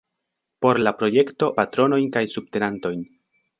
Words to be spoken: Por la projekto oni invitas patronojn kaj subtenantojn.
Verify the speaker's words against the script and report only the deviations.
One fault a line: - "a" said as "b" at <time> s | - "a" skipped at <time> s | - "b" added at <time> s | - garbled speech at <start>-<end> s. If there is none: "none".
- "oni invitas" skipped at 1.5 s